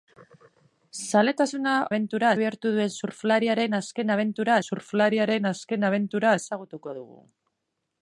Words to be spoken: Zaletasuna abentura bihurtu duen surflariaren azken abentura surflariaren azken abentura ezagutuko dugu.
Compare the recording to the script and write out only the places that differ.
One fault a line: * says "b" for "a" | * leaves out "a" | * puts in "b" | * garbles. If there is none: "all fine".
all fine